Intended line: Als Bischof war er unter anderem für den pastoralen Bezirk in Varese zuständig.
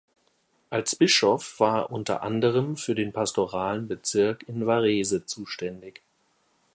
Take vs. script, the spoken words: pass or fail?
pass